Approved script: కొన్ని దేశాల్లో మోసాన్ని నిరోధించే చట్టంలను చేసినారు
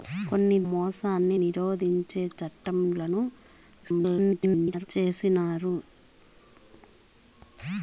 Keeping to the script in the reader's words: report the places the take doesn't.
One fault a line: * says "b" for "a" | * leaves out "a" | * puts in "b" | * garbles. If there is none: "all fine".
* leaves out "దేశాల్లో"
* garbles